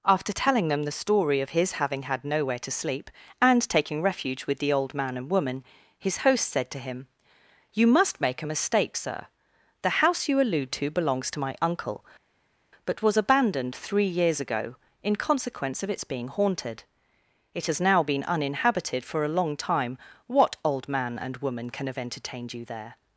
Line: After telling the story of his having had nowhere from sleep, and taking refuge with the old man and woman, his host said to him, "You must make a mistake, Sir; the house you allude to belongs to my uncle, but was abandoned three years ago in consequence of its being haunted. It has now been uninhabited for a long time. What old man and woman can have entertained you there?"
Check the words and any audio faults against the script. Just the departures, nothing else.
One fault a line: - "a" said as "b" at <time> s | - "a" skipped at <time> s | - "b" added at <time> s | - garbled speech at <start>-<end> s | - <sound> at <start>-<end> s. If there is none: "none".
- "them" added at 0.7 s
- "from" said as "to" at 2.6 s